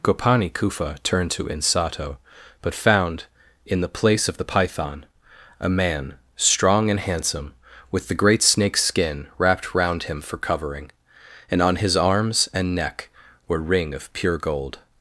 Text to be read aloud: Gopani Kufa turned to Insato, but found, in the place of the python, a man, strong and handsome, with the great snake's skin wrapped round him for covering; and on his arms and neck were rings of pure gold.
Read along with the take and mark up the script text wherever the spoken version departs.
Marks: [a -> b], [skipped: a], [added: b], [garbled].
Gopani Kufa turned to Insato, but found, in the place of the python, a man, strong and handsome, with the great snake's skin wrapped round him for covering; and on his arms and neck were [rings -> ring] of pure gold.